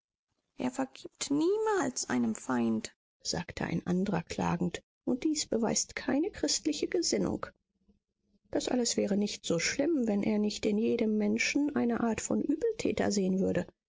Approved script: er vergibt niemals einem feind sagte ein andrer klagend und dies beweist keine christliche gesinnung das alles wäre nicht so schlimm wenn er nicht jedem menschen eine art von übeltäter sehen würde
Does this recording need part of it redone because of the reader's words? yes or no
yes